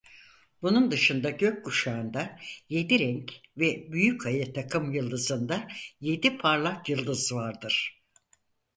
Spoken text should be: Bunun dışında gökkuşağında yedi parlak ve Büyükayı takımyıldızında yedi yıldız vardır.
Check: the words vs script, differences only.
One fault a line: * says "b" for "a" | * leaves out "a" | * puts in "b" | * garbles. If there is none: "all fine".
* says "renk" for "parlak"
* puts in "parlak"